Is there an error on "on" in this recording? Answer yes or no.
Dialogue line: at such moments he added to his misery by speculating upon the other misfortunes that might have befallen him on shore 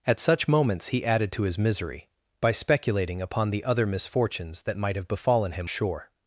yes